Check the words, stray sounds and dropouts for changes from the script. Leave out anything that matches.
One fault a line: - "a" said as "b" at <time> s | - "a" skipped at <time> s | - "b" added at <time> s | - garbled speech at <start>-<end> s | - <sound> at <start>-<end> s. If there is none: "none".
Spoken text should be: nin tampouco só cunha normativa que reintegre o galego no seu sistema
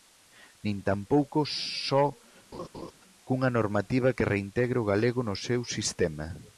- laugh at 2.5-2.9 s